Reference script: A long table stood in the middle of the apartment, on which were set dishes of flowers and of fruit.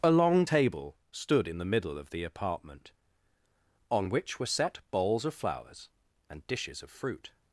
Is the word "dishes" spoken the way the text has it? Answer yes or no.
no